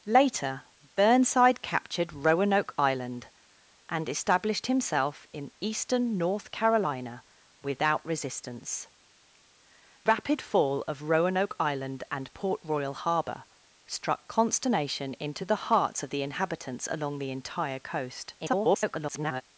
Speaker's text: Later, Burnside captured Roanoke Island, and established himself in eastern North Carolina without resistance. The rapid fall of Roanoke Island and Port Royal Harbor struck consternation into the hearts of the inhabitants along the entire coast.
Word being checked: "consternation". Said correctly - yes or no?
yes